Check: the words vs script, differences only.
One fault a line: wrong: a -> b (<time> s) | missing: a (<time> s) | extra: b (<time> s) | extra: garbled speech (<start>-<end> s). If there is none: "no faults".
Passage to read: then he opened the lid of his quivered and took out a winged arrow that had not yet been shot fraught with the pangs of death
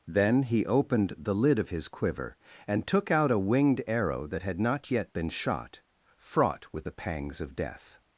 wrong: quivered -> quiver (1.9 s)